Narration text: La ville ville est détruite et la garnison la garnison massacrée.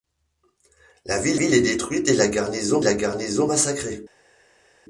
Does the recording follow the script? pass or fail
pass